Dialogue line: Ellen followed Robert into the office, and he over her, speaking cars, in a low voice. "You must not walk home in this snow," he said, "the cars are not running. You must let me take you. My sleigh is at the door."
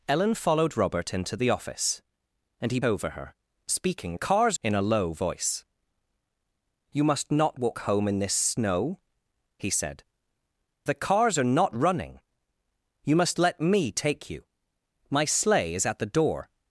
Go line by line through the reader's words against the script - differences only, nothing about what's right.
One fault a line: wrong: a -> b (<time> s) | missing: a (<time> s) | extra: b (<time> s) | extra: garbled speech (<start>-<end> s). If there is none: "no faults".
no faults